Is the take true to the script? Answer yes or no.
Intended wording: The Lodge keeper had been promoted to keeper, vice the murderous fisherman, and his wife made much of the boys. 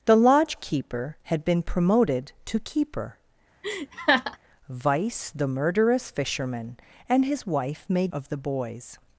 no